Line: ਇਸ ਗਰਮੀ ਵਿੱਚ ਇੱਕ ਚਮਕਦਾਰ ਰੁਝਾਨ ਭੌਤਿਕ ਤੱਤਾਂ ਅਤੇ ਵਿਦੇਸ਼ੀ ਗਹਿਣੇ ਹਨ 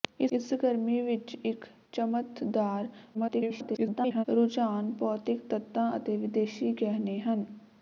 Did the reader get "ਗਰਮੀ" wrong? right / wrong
right